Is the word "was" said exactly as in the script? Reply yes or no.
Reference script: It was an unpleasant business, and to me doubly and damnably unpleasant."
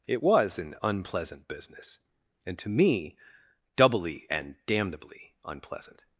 yes